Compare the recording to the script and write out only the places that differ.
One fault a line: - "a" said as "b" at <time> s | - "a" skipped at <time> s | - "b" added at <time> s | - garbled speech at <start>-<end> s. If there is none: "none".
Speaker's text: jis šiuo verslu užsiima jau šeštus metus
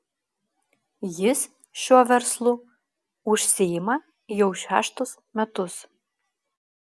none